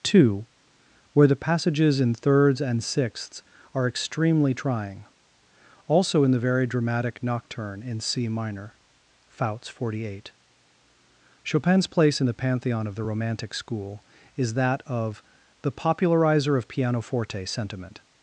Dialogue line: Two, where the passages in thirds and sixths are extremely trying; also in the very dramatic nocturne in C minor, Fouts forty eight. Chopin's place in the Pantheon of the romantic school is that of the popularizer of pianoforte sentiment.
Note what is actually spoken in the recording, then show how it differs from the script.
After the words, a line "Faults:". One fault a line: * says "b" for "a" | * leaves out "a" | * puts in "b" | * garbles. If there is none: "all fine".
Two, where the passages in thirds and sixths are extremely trying; also in the very dramatic nocturne in C minor, Fouts forty eight. Chopin's place in the Pantheon of the romantic school is that of the popularizer of pianoforte sentiment.
Faults:
all fine